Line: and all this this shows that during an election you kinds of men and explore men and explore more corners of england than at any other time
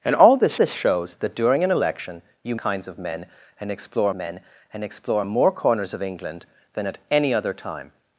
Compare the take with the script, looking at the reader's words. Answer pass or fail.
pass